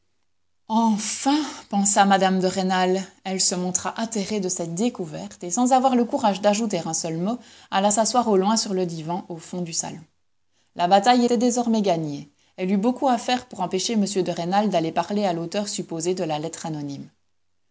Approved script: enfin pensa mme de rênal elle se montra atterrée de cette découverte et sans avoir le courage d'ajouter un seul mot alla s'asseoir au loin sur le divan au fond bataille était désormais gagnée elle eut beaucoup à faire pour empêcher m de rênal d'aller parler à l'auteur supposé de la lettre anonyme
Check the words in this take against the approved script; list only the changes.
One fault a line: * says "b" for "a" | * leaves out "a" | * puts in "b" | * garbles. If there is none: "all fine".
* puts in "du salon la"